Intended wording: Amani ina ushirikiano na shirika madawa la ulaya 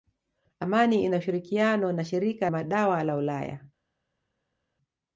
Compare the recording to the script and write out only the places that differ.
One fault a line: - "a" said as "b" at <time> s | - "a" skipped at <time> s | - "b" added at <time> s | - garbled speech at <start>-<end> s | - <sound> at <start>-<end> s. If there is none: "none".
none